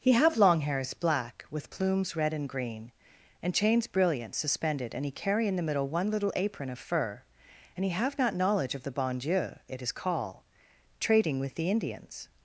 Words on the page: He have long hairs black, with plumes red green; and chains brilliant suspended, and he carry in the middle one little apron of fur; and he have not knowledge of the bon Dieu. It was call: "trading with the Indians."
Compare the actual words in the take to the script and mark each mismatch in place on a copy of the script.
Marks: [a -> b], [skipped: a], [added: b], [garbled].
He have long hairs black, with plumes red [added: and] green; and chains brilliant suspended, and he carry in the middle one little apron of fur; and he have not knowledge of the bon Dieu. It [was -> is] call: "trading with the Indians."